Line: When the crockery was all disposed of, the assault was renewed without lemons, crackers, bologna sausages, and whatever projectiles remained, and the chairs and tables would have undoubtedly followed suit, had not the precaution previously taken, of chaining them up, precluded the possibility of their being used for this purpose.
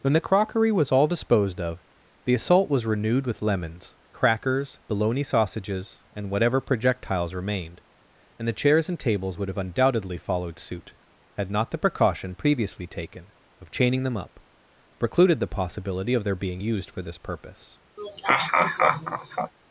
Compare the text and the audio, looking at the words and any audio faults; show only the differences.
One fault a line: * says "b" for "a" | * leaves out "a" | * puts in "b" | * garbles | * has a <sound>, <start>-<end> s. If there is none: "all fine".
* says "with" for "without"
* has a laugh, 18.0-19.5 s